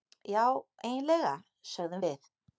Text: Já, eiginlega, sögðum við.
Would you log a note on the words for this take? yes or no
no